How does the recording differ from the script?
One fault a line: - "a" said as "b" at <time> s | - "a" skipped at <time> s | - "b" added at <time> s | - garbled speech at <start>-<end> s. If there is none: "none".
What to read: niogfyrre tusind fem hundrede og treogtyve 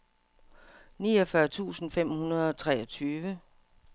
none